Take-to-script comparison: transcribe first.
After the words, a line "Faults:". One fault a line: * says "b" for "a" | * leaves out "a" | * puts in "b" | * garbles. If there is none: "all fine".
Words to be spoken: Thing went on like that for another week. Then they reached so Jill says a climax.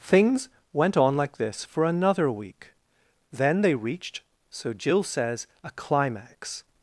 Things went on like this for another week. Then they reached so Jill says a climax.
Faults:
* says "Things" for "Thing"
* says "this" for "that"